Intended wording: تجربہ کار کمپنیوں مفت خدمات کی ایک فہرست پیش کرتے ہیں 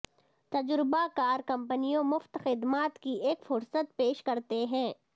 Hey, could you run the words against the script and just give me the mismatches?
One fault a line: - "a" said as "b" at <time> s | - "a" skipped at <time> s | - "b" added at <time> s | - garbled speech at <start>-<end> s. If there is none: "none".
none